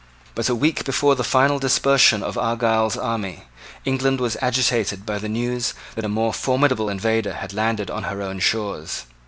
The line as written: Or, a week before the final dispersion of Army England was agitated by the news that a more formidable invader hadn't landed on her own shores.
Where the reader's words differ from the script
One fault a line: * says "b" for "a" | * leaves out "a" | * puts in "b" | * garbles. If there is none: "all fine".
* says "But" for "Or"
* puts in "Argyle's"
* says "had" for "hadn't"